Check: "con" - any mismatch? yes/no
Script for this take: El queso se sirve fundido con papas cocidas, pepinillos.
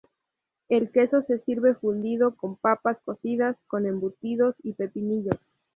no